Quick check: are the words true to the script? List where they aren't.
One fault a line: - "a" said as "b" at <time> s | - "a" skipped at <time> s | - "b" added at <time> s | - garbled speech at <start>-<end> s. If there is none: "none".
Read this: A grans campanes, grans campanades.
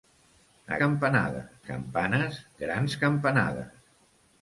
- "grans" said as "campanades" at 0.8 s